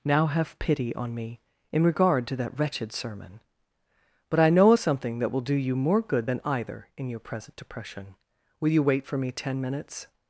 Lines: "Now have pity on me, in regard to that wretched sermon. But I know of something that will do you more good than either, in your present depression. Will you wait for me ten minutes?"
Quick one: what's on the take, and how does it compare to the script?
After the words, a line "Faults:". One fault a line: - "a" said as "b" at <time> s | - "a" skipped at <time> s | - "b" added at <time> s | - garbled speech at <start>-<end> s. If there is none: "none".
"Now have pity on me, in regard to that wretched sermon. But I know of something that will do you more good than either, in your present depression. Will you wait for me ten minutes?"
Faults:
none